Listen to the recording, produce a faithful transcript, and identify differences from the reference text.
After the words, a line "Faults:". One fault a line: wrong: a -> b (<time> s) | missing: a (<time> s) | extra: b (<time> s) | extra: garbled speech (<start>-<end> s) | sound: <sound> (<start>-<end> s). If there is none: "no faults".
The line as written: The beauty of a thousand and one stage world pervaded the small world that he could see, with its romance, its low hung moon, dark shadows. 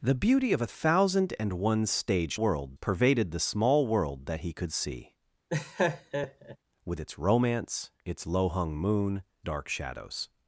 The beauty of a thousand and one stage world pervaded the small world that he could see, with its romance, its low hung moon, dark shadows.
Faults:
sound: laugh (5.5-6.6 s)